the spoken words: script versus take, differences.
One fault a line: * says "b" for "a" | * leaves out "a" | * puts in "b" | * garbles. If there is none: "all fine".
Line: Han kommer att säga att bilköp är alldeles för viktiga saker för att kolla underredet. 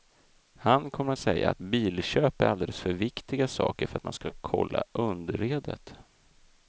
* puts in "man ska"